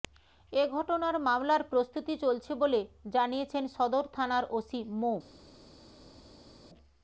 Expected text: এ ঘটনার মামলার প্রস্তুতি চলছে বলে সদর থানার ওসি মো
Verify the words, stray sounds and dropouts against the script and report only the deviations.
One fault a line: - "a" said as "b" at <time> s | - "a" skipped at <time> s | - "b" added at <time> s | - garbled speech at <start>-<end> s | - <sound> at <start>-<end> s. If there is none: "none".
- "জানিয়েছেন" added at 3.1 s